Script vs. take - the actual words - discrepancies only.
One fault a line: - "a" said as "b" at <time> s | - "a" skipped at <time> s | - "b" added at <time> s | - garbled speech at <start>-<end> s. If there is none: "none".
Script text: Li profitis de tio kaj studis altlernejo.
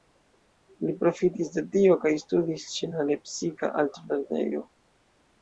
- "ĉe la lepsika" added at 2.8 s